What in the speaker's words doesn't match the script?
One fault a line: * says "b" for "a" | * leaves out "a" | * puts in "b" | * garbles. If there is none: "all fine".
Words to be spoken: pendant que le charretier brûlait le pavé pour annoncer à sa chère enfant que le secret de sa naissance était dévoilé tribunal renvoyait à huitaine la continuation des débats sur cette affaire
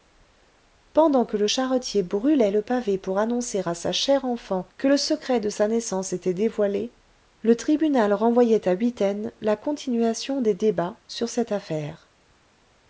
* puts in "le"